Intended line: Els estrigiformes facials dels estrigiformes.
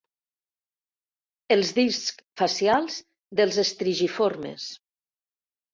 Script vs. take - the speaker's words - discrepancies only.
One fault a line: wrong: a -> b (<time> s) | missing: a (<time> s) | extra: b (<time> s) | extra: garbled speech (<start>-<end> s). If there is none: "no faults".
wrong: estrigiformes -> discs (1.8 s)